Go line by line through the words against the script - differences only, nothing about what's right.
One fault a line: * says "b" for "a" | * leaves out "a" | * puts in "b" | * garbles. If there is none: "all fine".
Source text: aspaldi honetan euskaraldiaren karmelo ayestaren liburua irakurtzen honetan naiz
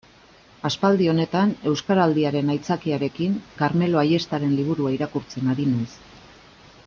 * puts in "aitzakiarekin"
* says "ari" for "honetan"